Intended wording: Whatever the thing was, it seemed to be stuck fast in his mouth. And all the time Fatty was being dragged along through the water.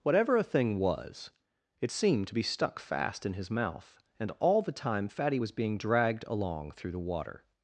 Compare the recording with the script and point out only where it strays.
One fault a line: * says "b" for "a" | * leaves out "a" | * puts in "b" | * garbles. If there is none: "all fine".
* says "a" for "the"